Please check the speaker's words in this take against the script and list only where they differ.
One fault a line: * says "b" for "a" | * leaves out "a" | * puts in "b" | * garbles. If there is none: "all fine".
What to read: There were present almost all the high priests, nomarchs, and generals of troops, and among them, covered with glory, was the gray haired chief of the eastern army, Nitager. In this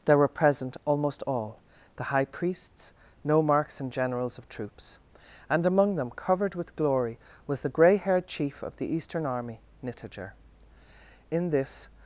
all fine